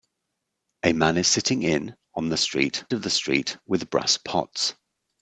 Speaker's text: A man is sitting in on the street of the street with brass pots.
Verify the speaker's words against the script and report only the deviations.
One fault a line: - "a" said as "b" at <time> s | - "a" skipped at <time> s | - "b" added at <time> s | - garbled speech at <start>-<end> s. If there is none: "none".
none